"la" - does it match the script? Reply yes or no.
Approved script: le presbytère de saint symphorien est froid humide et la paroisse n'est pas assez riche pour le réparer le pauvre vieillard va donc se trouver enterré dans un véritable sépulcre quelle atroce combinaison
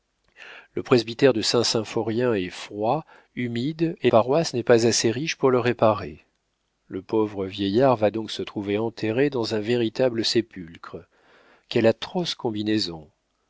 no